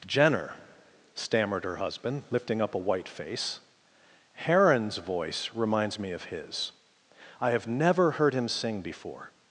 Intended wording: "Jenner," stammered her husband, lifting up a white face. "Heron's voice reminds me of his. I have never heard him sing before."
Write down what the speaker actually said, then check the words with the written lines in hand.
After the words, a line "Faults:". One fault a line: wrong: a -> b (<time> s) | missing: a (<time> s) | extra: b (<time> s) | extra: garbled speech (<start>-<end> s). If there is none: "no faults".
"Jenner," stammered her husband, lifting up a white face. "Heron's voice reminds me of his. I have never heard him sing before."
Faults:
no faults